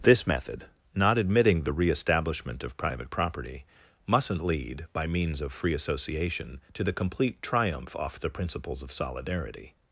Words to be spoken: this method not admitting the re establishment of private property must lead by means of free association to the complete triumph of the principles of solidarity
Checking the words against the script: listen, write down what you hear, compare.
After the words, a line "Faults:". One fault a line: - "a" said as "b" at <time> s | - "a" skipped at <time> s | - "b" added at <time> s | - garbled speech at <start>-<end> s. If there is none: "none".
this method not admitting the re establishment of private property mustn't lead by means of free association to the complete triumph off the principles of solidarity
Faults:
- "must" said as "mustn't" at 4.1 s
- "of" said as "off" at 8.0 s